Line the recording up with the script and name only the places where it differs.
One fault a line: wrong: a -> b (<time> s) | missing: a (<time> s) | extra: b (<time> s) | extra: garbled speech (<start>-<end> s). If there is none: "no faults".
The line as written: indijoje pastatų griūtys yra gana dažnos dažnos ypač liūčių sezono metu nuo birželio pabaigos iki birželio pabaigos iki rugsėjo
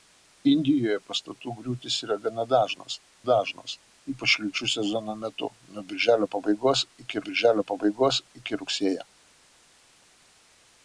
no faults